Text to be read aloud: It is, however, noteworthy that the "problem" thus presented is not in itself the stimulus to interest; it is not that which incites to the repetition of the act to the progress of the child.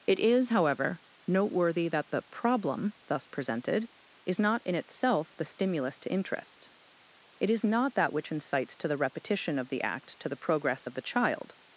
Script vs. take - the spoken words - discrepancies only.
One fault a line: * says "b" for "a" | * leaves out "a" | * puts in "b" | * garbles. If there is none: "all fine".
all fine